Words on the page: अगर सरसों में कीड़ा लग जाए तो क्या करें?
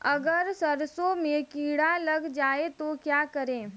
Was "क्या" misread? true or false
false